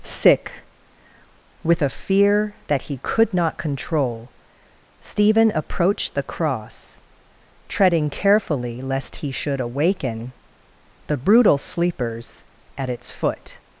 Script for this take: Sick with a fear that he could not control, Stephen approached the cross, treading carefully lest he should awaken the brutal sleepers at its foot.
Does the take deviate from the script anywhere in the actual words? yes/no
no